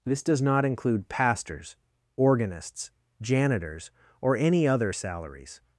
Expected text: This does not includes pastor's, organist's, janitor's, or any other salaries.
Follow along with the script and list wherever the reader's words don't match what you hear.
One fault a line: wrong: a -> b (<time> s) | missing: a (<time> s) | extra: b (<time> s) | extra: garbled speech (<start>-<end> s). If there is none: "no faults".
wrong: includes -> include (0.7 s)